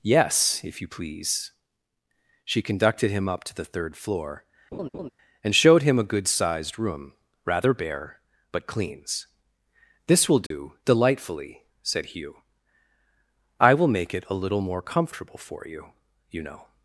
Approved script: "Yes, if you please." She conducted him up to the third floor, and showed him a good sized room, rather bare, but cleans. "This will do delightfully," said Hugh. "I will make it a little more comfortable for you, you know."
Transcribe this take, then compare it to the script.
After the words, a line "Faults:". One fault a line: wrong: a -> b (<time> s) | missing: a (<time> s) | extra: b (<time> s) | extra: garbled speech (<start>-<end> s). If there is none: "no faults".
"Yes, if you please." She conducted him up to the third floor, and showed him a good sized room, rather bare, but cleans. "This will do delightfully," said Hugh. "I will make it a little more comfortable for you, you know."
Faults:
no faults